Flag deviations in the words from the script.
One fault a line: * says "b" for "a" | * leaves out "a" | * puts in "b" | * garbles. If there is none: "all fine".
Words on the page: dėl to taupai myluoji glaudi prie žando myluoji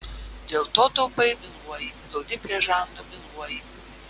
all fine